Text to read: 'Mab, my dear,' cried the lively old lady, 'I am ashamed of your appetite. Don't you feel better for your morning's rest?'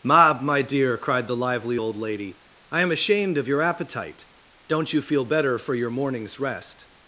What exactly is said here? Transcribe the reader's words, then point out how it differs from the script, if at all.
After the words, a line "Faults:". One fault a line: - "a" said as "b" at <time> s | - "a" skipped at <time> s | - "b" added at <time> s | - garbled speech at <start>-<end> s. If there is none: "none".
'Mab, my dear,' cried the lively old lady, 'I am ashamed of your appetite. Don't you feel better for your morning's rest?'
Faults:
none